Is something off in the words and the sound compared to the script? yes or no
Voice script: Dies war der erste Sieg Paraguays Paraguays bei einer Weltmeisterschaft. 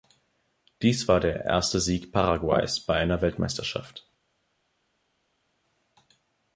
yes